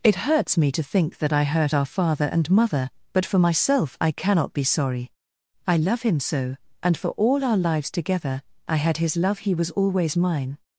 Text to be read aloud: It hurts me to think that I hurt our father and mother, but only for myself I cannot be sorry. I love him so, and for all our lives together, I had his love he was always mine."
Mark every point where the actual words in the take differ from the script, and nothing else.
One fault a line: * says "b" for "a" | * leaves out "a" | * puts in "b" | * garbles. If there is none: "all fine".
* leaves out "only"